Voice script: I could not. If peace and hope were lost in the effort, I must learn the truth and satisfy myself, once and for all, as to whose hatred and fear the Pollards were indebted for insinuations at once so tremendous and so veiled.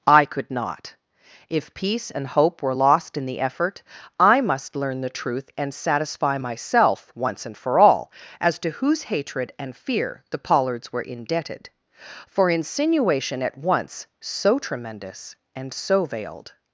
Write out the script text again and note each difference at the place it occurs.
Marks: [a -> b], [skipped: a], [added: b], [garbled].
I could not. If peace and hope were lost in the effort, I must learn the truth and satisfy myself, once and for all, as to whose hatred and fear the Pollards were indebted for [insinuations -> insinuation] at once so tremendous and so veiled.